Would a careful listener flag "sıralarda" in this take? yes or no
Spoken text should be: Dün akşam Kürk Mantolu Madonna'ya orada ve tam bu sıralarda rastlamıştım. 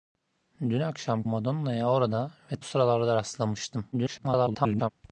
no